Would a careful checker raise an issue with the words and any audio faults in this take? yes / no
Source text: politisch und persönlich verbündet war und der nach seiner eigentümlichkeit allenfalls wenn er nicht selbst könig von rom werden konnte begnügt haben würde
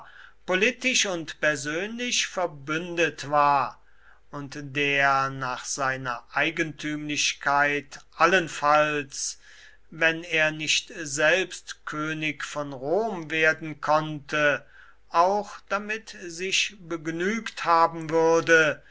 yes